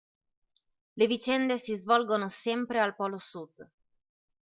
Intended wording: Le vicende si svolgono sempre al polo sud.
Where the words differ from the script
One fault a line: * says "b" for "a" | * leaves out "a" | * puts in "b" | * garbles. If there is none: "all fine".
all fine